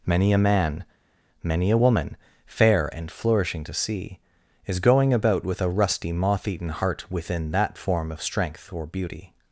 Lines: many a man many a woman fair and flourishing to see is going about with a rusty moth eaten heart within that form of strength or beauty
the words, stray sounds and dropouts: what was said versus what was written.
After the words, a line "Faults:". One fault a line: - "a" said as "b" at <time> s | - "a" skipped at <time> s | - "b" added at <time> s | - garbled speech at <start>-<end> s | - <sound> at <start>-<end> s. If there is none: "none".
many a man many a woman fair and flourishing to see is going about with a rusty moth eaten heart within that form of strength or beauty
Faults:
none